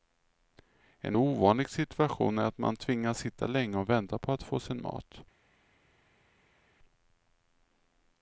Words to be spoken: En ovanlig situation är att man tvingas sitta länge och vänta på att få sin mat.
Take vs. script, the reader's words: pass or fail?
pass